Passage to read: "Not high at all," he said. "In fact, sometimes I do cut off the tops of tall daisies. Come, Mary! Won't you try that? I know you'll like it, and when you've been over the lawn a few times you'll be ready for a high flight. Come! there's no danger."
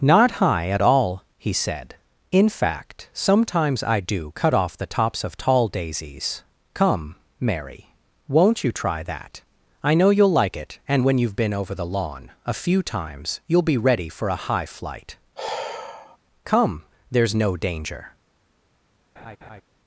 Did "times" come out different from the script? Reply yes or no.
no